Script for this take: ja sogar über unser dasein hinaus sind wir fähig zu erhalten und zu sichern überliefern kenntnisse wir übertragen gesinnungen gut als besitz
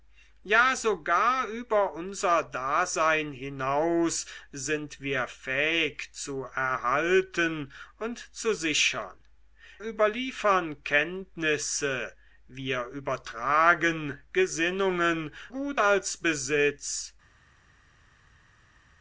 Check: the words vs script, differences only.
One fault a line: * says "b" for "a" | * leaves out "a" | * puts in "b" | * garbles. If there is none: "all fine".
all fine